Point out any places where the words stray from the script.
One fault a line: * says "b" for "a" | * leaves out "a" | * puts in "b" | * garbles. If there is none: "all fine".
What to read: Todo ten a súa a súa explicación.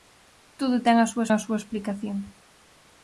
all fine